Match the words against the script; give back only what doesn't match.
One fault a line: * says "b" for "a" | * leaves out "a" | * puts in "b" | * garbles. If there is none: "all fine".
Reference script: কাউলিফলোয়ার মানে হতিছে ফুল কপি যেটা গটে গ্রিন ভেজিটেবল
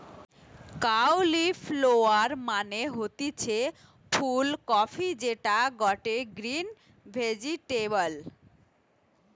all fine